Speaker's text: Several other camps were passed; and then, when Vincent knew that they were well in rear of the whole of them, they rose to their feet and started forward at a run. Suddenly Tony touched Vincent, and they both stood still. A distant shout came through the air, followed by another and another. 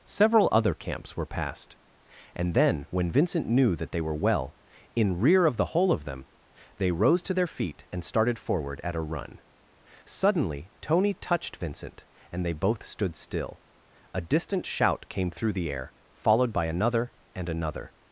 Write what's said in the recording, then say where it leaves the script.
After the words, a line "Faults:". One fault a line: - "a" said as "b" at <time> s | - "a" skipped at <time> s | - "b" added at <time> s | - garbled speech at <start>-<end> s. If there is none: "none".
Several other camps were passed; and then, when Vincent knew that they were well in rear of the whole of them, they rose to their feet and started forward at a run. Suddenly Tony touched Vincent, and they both stood still. A distant shout came through the air, followed by another and another.
Faults:
none